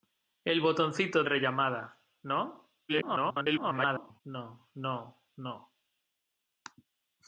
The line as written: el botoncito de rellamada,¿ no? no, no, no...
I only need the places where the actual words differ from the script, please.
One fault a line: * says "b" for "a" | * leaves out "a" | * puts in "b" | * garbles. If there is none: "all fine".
* leaves out "de"
* garbles